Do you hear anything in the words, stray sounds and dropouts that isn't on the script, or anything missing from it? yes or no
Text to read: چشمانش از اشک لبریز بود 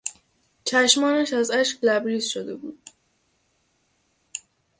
yes